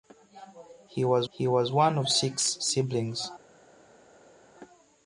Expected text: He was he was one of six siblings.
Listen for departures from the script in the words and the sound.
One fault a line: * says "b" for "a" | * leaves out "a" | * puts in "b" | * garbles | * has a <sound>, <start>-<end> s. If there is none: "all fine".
all fine